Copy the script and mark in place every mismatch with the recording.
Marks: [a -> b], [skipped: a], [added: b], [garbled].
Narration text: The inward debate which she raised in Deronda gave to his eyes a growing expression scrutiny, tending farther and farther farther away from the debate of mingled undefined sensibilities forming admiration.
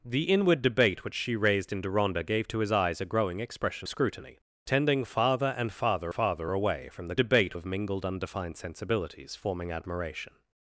The inward debate which she raised in Deronda gave to his eyes a growing expression scrutiny, tending farther and farther farther away from the debate of mingled undefined sensibilities forming admiration.